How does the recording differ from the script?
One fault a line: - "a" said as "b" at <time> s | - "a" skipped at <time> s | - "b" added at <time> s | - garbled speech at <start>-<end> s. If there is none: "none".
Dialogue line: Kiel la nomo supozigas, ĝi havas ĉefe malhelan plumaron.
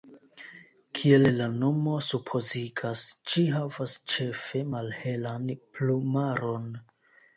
none